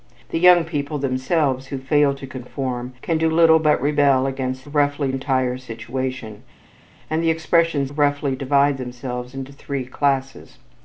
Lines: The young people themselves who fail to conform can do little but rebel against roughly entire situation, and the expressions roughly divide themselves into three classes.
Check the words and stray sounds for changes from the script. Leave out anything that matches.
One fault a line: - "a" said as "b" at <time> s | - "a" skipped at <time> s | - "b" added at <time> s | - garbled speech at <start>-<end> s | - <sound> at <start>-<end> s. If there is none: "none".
none